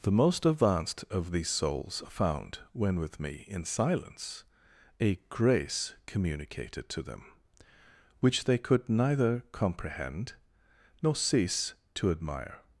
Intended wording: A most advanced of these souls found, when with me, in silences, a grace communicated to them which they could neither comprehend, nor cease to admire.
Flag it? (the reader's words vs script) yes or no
yes